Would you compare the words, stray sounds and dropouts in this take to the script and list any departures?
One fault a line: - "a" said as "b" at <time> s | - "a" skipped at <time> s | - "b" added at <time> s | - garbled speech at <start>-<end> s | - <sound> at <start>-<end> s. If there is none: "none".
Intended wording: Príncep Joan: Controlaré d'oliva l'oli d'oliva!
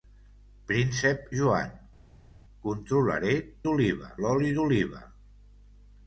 none